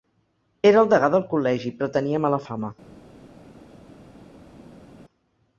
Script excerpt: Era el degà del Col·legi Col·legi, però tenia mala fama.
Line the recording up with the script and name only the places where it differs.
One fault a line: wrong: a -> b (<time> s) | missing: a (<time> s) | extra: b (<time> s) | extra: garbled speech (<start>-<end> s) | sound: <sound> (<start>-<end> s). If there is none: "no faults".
missing: Col·legi (1.7 s)